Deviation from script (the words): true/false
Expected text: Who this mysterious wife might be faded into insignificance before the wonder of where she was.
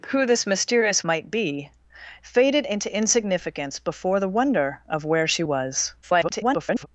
true